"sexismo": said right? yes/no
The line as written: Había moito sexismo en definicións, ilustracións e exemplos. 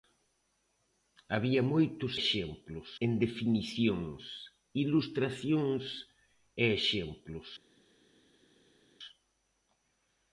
no